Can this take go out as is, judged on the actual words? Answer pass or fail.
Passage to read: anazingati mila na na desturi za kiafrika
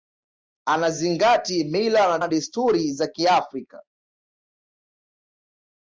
pass